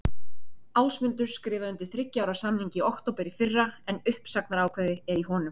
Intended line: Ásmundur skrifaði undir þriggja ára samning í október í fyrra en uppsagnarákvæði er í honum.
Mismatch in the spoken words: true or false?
false